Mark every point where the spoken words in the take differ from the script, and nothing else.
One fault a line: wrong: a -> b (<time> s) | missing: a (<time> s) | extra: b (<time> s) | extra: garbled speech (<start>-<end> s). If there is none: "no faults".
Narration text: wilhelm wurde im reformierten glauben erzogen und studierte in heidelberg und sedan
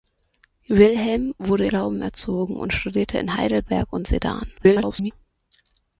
missing: im reformierten (1.7 s)
extra: garbled speech (4.6-5.1 s)